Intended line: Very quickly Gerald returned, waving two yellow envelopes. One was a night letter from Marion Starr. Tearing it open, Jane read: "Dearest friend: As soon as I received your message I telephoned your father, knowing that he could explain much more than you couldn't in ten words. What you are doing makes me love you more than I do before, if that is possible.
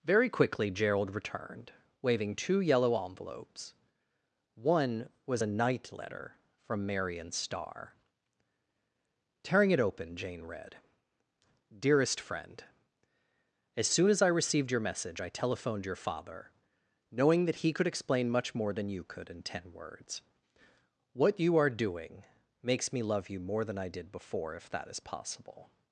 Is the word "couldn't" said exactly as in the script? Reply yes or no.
no